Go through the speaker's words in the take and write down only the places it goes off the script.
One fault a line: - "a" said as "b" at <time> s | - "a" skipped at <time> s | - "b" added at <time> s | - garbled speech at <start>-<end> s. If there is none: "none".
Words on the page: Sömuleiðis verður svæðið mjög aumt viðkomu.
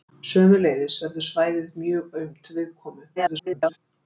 - garbled speech at 3.2-3.8 s